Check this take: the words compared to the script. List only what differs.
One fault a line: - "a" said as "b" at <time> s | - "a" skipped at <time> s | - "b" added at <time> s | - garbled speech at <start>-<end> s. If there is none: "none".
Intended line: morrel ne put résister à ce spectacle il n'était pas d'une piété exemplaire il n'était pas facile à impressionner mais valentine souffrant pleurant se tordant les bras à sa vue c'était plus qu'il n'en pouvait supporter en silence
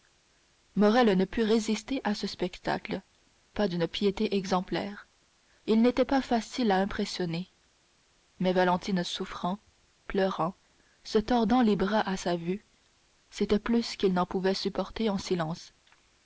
- "il n'était" skipped at 3.0 s